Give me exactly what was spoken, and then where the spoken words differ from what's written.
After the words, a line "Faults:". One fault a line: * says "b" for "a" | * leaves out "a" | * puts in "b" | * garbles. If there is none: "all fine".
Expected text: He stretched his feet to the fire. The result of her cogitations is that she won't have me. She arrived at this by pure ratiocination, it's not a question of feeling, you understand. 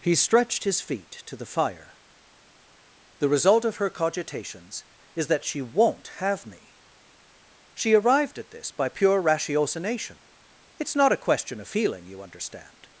He stretched his feet to the fire. The result of her cogitations is that she won't have me. She arrived at this by pure ratiocination, it's not a question of feeling, you understand.
Faults:
all fine